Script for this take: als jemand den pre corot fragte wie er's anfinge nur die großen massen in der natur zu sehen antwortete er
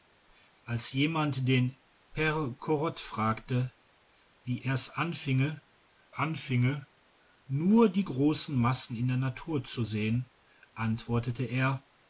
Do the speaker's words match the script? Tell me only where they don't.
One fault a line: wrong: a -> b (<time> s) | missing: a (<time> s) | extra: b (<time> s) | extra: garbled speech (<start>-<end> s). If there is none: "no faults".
extra: anfinge (6.1 s)